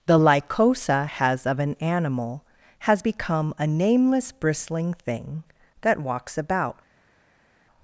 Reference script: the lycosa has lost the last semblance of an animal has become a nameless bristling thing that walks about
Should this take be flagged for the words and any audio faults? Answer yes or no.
yes